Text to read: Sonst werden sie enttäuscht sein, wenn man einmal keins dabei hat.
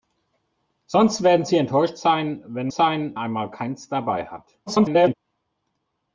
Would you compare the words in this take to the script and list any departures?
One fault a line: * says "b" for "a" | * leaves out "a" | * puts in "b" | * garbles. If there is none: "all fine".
* says "sein" for "man"
* garbles